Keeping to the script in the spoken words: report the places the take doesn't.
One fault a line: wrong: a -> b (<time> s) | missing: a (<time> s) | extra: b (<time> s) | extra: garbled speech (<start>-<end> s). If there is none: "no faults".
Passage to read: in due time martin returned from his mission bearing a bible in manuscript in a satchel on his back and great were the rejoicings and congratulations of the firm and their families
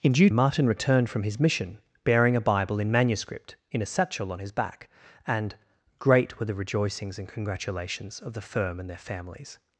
missing: time (0.3 s)